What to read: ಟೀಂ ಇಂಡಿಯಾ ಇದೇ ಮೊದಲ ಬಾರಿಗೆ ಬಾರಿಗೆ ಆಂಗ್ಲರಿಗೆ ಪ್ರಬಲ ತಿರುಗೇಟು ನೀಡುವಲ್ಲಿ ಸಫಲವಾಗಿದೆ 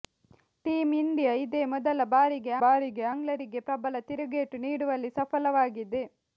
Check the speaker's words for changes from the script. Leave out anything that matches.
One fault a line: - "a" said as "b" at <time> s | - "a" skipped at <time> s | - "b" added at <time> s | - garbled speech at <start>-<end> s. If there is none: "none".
none